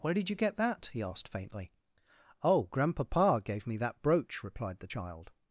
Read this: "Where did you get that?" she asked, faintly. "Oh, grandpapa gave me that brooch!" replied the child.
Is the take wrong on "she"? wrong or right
wrong